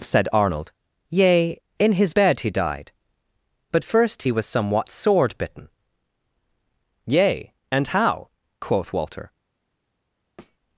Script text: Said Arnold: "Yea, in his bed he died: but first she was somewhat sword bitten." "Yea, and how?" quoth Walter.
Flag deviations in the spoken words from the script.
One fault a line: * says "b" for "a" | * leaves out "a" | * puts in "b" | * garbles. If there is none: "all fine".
* says "he" for "she"